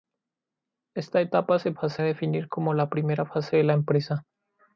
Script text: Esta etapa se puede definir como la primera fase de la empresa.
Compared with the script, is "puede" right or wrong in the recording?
wrong